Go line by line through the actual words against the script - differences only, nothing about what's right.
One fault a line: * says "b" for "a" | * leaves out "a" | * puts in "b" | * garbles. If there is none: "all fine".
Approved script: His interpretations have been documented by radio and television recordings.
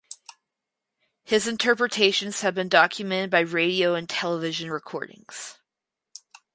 all fine